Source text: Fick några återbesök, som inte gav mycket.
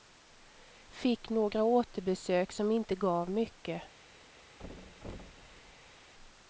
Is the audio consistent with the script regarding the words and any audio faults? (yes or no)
no